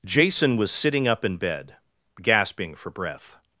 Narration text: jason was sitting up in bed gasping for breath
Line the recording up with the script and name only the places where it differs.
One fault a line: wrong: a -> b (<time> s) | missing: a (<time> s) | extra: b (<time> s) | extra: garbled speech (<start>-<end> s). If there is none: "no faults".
no faults